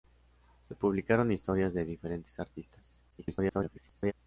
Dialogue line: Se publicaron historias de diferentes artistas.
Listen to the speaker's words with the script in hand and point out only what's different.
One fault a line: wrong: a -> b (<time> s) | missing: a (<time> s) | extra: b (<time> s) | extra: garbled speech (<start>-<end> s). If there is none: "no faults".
extra: garbled speech (3.1-4.1 s)